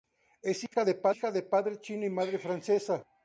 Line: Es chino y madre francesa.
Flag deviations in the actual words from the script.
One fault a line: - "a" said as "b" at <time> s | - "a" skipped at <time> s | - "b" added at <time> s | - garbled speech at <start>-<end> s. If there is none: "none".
- "hija de padre" added at 0.6 s